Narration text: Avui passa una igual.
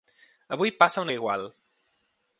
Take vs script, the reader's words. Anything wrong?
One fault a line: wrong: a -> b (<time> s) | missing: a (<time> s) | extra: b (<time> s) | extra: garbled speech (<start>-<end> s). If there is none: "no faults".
no faults